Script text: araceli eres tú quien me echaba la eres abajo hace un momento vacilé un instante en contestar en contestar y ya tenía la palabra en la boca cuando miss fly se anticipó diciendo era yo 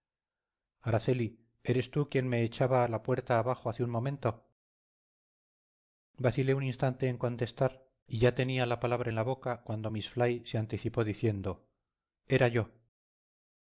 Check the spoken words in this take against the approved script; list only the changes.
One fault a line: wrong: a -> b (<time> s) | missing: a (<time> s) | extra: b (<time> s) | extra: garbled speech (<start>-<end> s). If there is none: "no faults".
wrong: eres -> puerta (3.0 s)
missing: en contestar (7.9 s)